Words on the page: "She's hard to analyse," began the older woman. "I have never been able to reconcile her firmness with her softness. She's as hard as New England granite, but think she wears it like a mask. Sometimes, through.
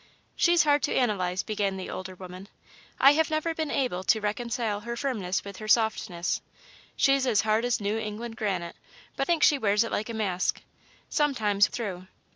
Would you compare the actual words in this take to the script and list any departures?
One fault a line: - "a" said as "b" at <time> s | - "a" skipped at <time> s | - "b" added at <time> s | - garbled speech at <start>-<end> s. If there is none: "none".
none